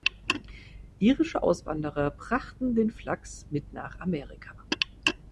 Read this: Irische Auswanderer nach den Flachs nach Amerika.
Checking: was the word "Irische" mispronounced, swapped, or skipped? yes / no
no